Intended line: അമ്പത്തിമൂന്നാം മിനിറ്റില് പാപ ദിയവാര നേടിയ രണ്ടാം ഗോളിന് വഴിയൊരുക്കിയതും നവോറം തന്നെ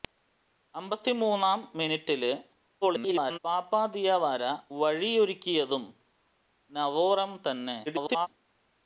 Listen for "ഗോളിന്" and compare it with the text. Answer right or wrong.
wrong